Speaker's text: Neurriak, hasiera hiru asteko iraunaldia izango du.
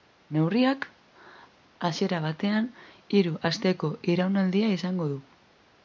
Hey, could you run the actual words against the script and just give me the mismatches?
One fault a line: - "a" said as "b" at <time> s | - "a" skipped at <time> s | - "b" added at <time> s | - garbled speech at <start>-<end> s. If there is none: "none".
- "batean" added at 2.2 s